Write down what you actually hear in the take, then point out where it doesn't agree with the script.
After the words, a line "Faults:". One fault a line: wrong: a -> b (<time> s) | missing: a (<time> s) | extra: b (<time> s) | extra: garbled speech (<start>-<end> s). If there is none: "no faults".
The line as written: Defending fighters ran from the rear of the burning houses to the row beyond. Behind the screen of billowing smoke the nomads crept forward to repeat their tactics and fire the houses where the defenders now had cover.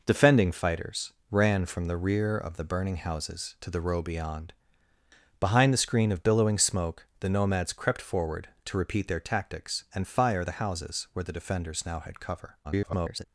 Defending fighters ran from the rear of the burning houses to the row beyond. Behind the screen of billowing smoke the nomads crept forward to repeat their tactics and fire the houses where the defenders now had cover. [garbled]
Faults:
extra: garbled speech (12.6-13.3 s)